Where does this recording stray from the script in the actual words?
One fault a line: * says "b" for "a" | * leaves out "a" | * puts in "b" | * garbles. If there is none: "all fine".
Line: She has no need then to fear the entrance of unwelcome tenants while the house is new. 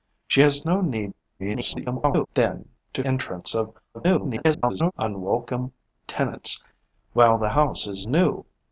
* garbles
* leaves out "fear the"
* garbles